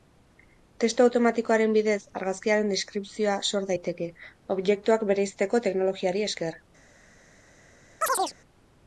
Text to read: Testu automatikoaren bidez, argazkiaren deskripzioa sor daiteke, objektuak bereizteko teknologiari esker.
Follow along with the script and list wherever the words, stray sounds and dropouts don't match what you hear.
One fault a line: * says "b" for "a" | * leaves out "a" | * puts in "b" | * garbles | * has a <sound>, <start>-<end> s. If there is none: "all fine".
* has a chirp, 8.0-8.4 s